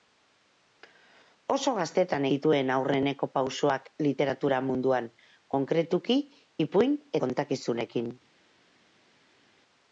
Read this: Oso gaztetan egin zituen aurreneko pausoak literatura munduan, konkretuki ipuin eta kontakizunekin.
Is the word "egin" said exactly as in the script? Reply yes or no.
no